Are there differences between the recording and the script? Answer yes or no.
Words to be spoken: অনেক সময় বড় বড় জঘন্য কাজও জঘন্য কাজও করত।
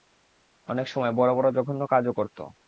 yes